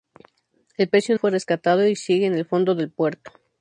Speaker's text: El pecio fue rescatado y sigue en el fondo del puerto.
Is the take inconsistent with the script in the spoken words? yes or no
no